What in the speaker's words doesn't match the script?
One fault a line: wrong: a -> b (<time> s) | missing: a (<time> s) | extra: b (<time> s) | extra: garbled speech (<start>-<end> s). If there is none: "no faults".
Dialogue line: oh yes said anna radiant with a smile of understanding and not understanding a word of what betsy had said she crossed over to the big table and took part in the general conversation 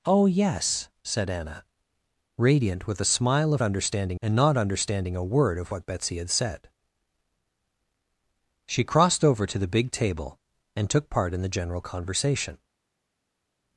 no faults